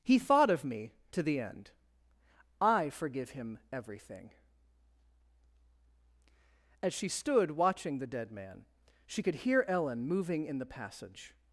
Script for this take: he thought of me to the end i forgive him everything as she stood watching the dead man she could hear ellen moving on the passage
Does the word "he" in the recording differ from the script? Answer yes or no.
no